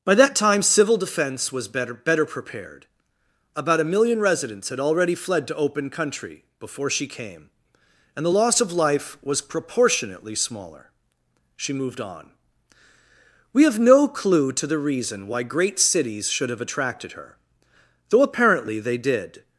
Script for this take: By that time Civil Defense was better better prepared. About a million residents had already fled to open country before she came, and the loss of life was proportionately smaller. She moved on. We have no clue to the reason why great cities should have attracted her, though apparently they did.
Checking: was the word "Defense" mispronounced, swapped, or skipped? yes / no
no